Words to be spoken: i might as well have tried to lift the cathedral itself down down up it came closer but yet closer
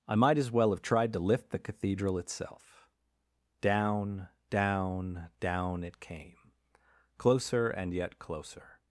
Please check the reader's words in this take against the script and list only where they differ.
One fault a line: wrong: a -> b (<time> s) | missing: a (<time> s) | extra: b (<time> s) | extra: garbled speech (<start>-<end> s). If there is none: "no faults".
wrong: up -> down (5.4 s)
wrong: but -> and (7.7 s)